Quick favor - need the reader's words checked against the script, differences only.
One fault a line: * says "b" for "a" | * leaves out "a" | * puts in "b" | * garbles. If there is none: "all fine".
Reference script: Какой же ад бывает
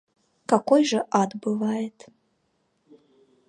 all fine